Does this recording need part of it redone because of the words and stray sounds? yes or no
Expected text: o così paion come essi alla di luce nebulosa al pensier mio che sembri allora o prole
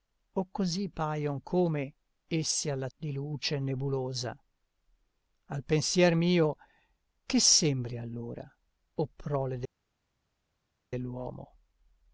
no